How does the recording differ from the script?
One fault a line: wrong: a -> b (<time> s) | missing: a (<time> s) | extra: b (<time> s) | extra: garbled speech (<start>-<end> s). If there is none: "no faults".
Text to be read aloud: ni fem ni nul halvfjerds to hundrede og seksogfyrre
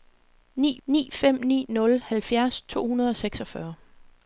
extra: ni (0.9 s)